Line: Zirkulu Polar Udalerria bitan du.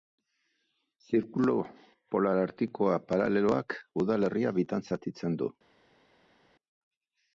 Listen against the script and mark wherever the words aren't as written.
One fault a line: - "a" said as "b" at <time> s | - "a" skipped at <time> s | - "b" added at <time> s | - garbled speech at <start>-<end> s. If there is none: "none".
- "Artikoa paraleloak" added at 2.5 s
- "zatitzen" added at 4.9 s